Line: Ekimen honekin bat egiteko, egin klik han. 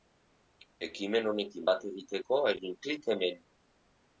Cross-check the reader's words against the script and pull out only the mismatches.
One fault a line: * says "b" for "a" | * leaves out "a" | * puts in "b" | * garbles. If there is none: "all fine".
* says "hemen" for "han"